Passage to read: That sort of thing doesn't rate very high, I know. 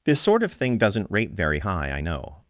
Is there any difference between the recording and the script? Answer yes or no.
yes